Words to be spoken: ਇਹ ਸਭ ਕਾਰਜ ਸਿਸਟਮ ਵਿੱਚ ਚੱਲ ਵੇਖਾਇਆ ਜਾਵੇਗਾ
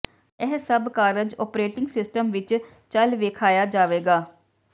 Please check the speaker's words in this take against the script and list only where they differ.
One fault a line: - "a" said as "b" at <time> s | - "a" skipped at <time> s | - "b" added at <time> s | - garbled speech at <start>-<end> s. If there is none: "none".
- "ਓਪਰੇਟਿੰਗ" added at 1.4 s